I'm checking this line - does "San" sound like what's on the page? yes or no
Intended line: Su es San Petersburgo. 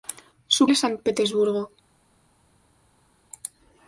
yes